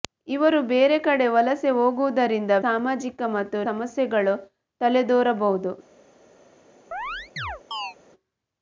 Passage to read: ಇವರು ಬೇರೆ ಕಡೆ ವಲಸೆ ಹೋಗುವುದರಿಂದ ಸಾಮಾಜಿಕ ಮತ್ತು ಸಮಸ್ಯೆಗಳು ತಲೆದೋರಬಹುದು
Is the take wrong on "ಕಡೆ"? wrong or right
right